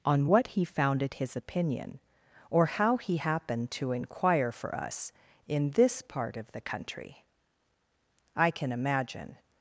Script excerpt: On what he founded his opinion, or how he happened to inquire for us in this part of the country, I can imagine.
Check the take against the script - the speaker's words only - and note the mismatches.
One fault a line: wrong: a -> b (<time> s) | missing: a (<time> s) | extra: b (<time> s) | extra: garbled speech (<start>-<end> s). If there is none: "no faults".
no faults